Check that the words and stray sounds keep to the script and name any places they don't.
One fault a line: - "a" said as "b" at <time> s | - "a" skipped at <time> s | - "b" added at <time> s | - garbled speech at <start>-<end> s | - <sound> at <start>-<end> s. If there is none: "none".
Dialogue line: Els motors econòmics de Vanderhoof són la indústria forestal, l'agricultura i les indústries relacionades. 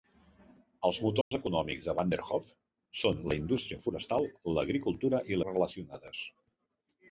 - dropout at 1.2-1.3 s
- "les indústries" skipped at 5.4 s